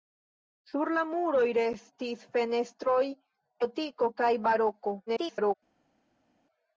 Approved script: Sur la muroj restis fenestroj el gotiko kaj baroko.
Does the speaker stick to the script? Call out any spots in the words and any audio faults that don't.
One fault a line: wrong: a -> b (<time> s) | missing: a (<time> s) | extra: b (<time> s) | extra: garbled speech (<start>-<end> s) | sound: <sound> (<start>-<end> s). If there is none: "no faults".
missing: el (3.0 s)
extra: garbled speech (5.1-5.5 s)